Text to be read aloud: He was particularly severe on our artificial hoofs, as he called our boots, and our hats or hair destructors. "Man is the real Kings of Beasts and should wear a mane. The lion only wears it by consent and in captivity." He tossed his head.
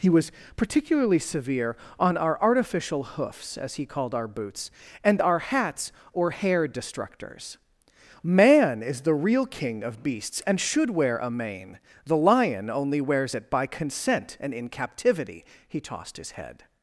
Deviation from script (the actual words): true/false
true